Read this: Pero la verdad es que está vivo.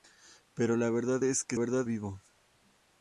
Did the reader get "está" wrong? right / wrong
wrong